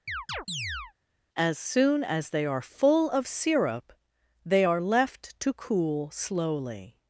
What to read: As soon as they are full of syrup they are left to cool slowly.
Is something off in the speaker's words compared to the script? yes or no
no